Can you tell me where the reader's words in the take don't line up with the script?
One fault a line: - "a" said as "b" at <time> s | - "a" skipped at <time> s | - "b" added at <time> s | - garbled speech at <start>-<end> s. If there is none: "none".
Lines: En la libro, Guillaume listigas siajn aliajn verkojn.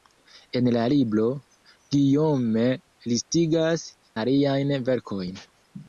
- "siajn" skipped at 3.9 s